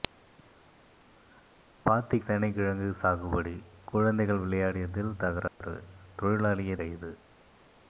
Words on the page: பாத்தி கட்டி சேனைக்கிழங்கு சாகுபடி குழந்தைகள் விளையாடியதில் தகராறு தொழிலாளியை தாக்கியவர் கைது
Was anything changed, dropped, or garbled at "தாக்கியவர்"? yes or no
yes